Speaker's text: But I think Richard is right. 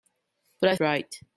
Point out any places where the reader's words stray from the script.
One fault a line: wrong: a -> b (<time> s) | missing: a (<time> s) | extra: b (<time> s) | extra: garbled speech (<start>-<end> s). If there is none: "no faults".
missing: think Richard is (0.8 s)